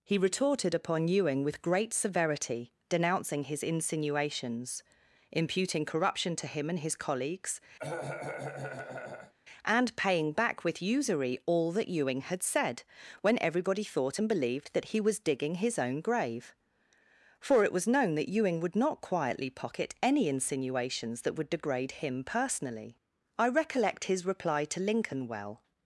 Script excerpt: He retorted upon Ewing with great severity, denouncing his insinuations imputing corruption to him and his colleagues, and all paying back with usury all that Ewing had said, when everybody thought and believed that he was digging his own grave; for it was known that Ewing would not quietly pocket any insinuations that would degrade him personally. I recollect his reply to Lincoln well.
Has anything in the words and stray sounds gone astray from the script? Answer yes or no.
yes